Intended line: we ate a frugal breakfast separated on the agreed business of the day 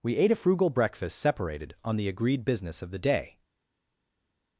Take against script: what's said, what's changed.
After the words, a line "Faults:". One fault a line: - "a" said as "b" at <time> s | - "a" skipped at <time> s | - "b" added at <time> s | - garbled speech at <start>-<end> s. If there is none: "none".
we ate a frugal breakfast separated on the agreed business of the day
Faults:
none